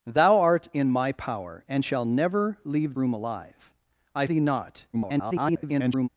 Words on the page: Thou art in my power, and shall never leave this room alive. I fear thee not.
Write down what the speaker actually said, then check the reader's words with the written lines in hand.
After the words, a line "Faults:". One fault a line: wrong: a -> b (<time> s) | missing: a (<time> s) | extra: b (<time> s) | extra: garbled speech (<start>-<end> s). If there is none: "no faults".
Thou art in my power, and shall never leave room alive. I thee not. [garbled]
Faults:
missing: this (3.0 s)
missing: fear (4.3 s)
extra: garbled speech (4.9-6.1 s)